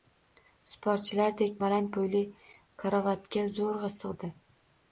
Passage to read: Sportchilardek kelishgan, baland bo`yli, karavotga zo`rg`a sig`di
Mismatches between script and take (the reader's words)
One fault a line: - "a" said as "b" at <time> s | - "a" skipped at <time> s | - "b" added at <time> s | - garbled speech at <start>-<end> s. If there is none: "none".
- "kelishgan" skipped at 1.6 s